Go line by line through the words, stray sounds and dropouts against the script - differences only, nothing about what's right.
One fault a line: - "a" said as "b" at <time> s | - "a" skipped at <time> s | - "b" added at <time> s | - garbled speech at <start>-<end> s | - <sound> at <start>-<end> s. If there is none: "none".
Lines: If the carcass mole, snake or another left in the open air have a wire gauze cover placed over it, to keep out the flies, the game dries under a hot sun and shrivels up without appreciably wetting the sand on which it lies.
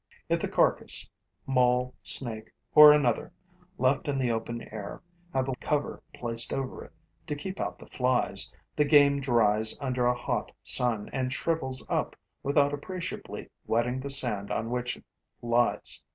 - "wire gauze" skipped at 5.5 s